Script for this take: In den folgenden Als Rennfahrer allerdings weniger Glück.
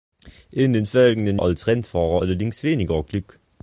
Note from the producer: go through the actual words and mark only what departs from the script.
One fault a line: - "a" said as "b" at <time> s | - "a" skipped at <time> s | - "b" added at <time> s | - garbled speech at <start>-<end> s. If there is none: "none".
none